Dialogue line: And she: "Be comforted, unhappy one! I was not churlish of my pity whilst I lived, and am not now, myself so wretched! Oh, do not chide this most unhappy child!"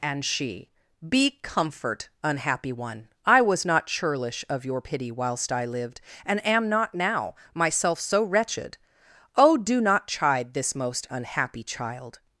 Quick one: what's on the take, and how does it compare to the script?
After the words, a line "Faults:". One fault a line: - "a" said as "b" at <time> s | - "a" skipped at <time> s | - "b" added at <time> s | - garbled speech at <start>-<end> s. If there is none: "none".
And she: "Be comfort, unhappy one! I was not churlish of your pity whilst I lived, and am not now, myself so wretched! Oh, do not chide this most unhappy child!"
Faults:
- "comforted" said as "comfort" at 1.4 s
- "my" said as "your" at 4.7 s